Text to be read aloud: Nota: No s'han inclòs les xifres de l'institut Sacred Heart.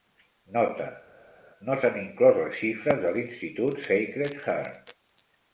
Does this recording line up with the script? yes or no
yes